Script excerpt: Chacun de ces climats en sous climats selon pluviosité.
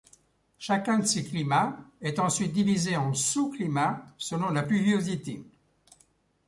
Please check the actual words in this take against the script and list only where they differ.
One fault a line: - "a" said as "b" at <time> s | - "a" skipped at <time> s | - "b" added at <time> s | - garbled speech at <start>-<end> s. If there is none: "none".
- "est ensuite divisé" added at 2.0 s
- "la" added at 4.5 s